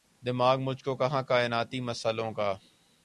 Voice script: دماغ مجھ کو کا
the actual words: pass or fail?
fail